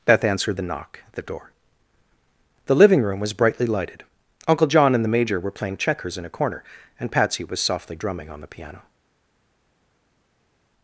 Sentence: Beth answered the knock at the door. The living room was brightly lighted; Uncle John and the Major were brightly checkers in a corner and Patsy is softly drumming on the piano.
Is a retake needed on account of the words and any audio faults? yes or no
yes